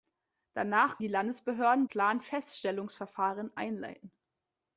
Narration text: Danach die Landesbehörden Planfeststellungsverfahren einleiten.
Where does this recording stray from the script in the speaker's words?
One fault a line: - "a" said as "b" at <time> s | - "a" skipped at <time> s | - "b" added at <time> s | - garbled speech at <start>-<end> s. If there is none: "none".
none